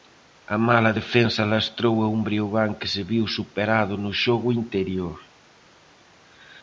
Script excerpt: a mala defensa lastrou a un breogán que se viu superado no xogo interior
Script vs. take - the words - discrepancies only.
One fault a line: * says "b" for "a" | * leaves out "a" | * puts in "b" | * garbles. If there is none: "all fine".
all fine